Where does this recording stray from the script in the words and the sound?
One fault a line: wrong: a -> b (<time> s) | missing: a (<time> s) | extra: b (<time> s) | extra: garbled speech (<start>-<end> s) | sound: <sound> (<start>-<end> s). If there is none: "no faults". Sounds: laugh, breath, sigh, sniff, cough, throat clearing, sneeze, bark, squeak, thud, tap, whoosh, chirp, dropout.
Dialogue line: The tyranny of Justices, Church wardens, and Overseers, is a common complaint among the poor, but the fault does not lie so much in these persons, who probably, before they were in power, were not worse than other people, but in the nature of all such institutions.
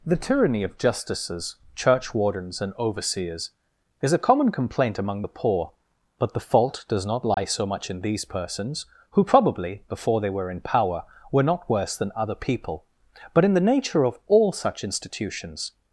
sound: dropout (7.3-7.4 s)